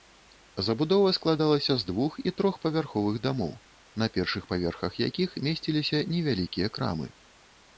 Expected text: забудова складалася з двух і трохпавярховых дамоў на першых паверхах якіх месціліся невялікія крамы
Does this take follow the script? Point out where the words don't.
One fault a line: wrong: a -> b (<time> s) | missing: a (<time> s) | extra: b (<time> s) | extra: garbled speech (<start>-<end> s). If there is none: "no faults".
no faults